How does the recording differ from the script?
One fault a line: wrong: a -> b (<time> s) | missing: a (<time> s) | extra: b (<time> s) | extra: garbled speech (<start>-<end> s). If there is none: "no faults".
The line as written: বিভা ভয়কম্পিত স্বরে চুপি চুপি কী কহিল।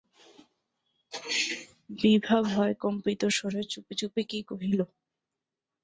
no faults